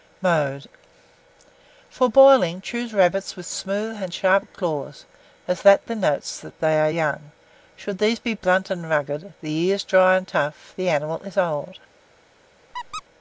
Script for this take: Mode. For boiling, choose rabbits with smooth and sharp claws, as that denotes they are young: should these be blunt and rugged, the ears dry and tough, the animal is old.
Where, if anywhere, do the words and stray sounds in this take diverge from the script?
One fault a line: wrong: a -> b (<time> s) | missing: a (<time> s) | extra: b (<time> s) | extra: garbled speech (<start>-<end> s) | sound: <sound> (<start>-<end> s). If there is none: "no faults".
sound: squeak (12.7-13.0 s)